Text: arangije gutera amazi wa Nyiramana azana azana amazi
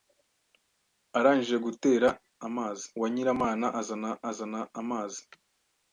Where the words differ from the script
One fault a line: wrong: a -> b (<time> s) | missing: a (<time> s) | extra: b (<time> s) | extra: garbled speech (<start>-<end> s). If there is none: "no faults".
no faults